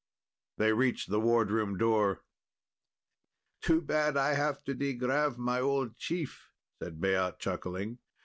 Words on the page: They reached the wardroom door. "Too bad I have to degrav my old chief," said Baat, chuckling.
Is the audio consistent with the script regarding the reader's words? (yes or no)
yes